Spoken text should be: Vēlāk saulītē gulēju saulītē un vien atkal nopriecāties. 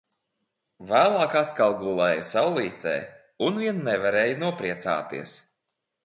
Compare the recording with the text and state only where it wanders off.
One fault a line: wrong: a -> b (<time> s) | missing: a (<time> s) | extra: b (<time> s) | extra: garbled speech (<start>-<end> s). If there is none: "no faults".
wrong: saulītē -> atkal (1.4 s)
wrong: atkal -> nevarēju (3.9 s)